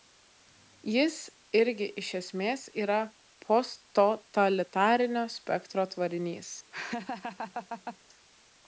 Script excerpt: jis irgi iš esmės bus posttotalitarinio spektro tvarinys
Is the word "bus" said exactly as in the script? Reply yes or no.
no